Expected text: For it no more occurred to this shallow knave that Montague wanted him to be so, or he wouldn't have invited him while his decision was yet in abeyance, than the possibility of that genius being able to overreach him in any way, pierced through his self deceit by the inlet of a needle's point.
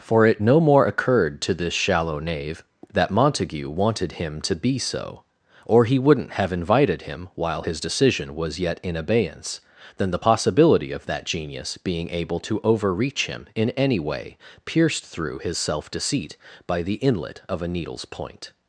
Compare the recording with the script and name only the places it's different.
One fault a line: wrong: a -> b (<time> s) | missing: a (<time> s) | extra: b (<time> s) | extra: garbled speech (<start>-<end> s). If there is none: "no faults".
no faults